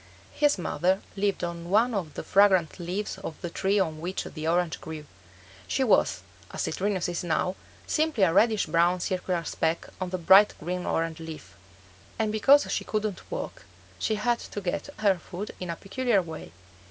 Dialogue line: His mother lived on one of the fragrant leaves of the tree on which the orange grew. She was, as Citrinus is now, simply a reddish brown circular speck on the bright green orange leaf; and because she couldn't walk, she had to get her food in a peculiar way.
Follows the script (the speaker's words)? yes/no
yes